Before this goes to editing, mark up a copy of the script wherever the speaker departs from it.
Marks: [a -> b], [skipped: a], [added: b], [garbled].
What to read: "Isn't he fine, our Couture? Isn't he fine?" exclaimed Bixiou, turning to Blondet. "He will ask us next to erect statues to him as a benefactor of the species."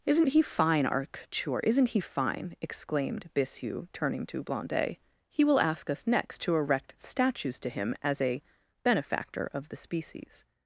"Isn't he fine, our Couture? Isn't he fine?" exclaimed Bixiou, turning to Blondet. "He will ask us next to erect statues to him as a benefactor of the species."